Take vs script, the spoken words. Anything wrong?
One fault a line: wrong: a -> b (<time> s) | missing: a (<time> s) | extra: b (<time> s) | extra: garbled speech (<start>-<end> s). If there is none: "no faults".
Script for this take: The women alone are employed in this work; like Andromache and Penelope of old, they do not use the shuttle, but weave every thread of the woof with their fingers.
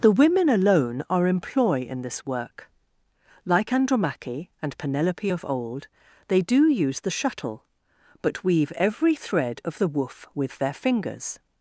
wrong: employed -> employ (1.3 s)
missing: not (6.7 s)